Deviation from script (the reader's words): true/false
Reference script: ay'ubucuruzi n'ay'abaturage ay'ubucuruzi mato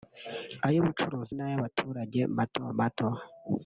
true